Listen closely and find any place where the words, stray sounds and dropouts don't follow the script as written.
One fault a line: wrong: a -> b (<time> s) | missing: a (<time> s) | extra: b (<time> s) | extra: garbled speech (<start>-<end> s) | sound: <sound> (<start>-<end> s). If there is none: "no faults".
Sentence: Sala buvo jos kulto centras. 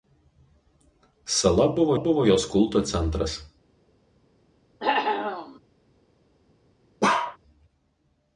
extra: buvo (2.0 s)
sound: cough (4.8-5.6 s)
sound: bark (7.0-7.4 s)